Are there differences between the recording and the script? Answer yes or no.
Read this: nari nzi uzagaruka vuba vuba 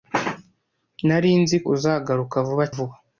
no